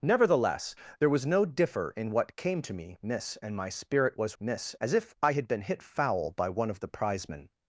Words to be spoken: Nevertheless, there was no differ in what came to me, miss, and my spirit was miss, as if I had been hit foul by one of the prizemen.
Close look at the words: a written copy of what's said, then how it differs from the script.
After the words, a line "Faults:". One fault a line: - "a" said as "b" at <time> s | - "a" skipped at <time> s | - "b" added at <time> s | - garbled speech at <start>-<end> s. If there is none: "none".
Nevertheless, there was no differ in what came to me, miss, and my spirit was miss, as if I had been hit foul by one of the prizemen.
Faults:
none